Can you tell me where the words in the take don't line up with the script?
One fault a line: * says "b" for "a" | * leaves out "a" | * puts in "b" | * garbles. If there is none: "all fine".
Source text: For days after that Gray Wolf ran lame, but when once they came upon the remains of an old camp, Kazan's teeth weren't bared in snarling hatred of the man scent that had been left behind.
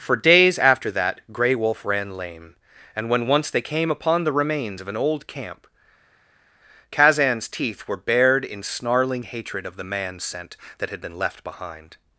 * says "and" for "but"
* says "were" for "weren't"